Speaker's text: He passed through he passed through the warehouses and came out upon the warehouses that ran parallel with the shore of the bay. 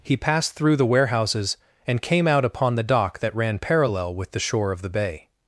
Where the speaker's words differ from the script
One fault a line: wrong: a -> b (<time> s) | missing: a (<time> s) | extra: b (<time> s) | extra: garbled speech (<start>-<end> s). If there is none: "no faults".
missing: he passed through (0.8 s)
wrong: warehouses -> dock (2.8 s)